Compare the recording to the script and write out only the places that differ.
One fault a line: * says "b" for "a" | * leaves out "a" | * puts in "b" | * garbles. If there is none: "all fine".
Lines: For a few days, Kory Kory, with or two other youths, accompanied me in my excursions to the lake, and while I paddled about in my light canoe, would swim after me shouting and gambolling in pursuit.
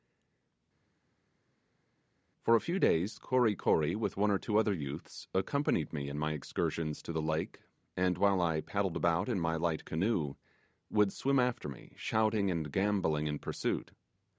* puts in "one"